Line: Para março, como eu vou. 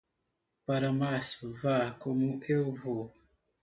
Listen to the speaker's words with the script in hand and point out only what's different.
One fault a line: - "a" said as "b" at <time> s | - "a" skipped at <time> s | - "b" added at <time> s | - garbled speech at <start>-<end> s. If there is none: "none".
- "vá" added at 1.6 s